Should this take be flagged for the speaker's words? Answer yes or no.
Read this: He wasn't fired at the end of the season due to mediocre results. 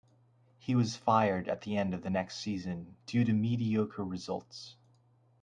yes